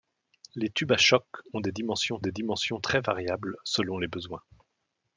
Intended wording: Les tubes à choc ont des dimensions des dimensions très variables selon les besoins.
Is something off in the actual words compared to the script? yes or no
no